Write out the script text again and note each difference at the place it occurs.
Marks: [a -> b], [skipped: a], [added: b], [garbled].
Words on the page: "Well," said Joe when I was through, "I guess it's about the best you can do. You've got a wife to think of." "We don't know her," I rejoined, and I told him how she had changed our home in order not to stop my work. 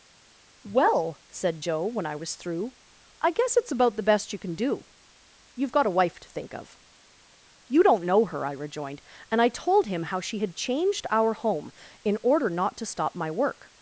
"Well," said Joe when I was through, "I guess it's about the best you can do. You've got a wife to think of." ["We -> You] don't know her," I rejoined, and I told him how she had changed our home in order not to stop my work.